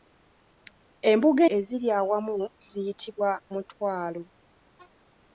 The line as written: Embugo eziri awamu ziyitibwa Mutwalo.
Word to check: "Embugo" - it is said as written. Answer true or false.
true